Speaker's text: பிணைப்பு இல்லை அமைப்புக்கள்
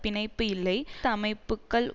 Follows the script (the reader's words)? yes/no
yes